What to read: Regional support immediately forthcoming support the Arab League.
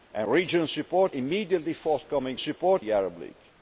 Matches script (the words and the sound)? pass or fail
pass